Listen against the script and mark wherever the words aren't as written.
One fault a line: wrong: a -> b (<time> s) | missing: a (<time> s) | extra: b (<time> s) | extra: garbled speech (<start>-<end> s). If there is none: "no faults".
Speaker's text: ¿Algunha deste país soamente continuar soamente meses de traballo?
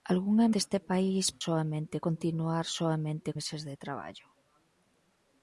no faults